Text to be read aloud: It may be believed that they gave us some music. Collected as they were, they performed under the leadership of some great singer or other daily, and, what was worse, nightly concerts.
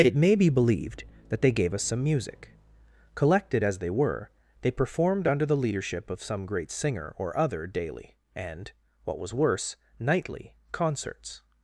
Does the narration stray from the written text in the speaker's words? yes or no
no